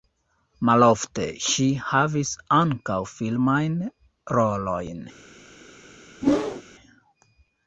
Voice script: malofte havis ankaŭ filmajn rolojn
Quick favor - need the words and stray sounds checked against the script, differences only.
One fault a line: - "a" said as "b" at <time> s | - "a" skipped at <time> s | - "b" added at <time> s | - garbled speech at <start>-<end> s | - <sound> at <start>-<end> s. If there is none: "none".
- "ŝi" added at 1.5 s
- whoosh at 6.2-6.6 s